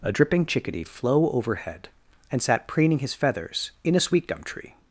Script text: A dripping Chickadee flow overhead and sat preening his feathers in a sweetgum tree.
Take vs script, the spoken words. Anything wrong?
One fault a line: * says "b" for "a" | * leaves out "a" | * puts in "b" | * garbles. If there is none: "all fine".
all fine